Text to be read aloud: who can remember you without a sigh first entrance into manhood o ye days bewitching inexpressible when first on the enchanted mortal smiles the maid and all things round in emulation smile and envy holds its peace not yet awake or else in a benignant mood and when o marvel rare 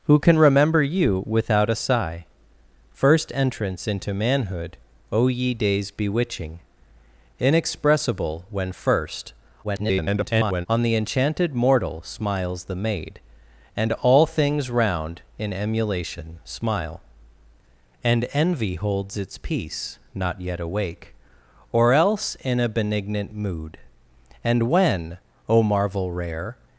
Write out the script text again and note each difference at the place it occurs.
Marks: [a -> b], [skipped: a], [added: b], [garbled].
who can remember you without a sigh first entrance into manhood o ye days bewitching inexpressible when first [garbled] on the enchanted mortal smiles the maid and all things round in emulation smile and envy holds its peace not yet awake or else in a benignant mood and when o marvel rare